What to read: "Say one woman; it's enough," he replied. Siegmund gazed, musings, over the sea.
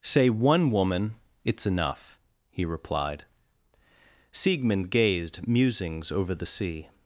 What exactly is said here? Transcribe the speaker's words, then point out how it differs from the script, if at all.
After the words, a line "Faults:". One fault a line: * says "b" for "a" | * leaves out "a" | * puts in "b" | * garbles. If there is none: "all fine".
"Say one woman; it's enough," he replied. Siegmund gazed, musings, over the sea.
Faults:
all fine